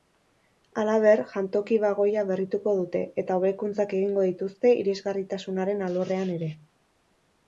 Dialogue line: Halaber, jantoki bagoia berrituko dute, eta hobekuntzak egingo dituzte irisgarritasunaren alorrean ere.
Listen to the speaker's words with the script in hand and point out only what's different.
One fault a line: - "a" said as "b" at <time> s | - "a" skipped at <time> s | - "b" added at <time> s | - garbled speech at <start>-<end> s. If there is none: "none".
none